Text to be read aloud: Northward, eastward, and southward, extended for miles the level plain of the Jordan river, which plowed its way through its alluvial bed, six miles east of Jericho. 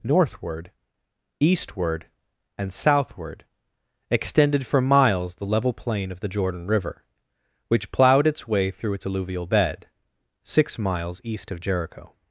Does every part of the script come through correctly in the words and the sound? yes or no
yes